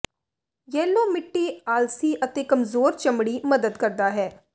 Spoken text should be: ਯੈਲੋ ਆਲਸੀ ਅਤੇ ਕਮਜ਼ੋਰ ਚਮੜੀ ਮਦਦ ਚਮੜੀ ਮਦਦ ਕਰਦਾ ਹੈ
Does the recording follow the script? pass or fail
fail